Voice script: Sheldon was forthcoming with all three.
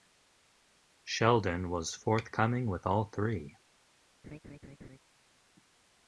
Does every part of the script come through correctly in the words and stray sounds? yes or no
no